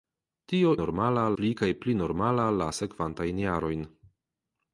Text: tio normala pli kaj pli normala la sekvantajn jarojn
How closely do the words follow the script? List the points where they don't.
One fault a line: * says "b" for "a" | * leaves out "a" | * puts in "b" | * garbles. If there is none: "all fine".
all fine